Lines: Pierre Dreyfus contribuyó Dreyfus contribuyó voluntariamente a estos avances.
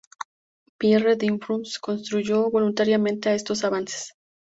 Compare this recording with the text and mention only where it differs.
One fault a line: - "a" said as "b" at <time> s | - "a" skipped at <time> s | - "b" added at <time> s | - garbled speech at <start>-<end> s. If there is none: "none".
- "Dreyfus contribuyó" skipped at 2.5 s